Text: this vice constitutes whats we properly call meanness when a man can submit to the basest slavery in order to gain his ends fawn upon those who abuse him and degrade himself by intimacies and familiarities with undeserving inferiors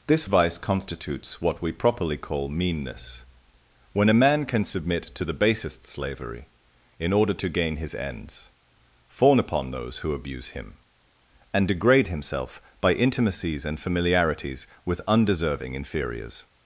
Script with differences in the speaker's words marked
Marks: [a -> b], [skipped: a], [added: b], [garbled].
this vice constitutes [whats -> what] we properly call meanness when a man can submit to the basest slavery in order to gain his ends fawn upon those who abuse him and degrade himself by intimacies and familiarities with undeserving inferiors